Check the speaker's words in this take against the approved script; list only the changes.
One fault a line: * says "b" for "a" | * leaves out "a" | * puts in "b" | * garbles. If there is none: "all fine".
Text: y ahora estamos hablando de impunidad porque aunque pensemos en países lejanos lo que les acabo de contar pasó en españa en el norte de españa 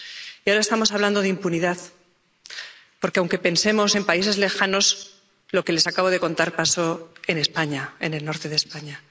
all fine